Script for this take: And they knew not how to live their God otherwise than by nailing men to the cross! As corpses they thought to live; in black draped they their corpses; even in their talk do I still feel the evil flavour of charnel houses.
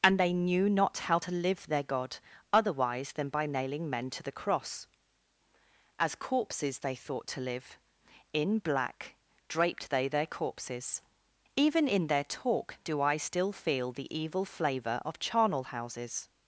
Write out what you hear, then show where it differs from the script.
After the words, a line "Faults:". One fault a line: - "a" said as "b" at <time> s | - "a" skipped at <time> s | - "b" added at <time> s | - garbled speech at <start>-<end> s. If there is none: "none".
And they knew not how to live their God otherwise than by nailing men to the cross! As corpses they thought to live; in black draped they their corpses; even in their talk do I still feel the evil flavour of charnel houses.
Faults:
none